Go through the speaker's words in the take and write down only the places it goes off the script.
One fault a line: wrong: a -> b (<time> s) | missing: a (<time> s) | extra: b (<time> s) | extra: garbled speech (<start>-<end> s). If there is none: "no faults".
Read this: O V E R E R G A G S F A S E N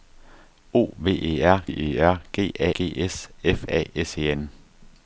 no faults